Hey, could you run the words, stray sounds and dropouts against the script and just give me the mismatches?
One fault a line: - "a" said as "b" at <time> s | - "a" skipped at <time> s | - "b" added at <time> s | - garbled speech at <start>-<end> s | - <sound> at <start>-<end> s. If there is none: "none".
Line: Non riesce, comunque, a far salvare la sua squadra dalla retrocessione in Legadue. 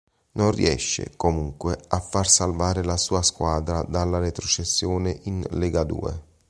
none